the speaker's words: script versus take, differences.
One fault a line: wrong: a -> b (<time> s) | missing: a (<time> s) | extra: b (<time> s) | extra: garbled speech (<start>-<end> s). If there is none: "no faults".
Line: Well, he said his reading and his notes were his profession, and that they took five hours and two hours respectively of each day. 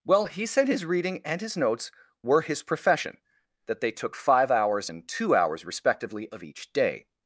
missing: and (3.2 s)